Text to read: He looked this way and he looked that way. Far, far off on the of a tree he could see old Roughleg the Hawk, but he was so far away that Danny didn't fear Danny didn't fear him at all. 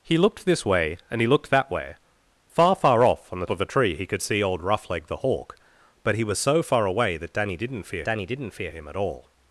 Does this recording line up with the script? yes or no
yes